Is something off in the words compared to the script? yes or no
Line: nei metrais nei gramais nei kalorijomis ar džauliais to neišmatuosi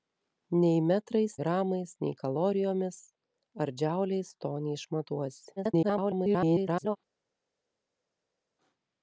yes